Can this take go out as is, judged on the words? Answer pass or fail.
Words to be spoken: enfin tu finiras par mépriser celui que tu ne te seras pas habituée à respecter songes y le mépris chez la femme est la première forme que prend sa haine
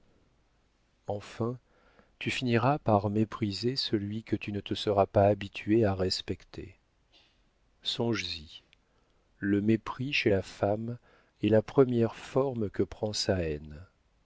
pass